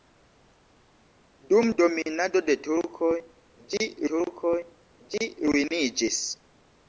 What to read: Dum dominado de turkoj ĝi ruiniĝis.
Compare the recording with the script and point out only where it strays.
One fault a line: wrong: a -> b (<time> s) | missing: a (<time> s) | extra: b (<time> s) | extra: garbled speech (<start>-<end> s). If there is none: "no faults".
extra: turkoj ĝi (4.1 s)